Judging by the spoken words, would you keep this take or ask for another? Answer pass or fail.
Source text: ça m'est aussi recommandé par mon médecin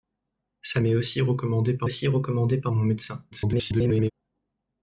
fail